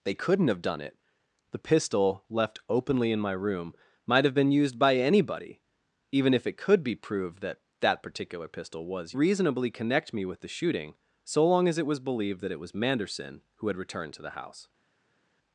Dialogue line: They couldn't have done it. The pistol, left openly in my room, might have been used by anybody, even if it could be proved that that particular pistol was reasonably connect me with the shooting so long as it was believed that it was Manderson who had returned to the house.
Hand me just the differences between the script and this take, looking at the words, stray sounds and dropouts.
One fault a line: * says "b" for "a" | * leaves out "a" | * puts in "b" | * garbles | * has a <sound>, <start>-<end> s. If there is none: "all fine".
all fine